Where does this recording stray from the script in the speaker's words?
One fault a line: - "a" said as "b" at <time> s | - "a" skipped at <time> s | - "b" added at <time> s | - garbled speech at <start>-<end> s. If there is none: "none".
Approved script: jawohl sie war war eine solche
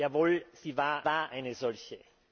none